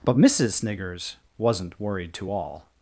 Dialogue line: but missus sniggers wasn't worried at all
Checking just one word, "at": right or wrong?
wrong